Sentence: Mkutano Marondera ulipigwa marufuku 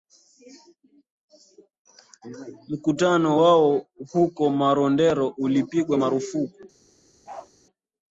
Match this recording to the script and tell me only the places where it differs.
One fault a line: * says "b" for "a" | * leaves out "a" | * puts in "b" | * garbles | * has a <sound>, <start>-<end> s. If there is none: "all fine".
* puts in "wao huko"
* has a bark, 7.3-7.5 s